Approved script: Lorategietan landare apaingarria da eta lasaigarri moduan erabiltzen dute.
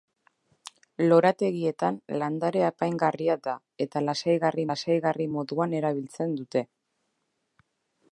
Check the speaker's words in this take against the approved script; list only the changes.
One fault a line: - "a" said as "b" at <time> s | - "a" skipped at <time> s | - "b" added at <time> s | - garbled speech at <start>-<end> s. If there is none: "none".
- "lasaigarri" added at 4.7 s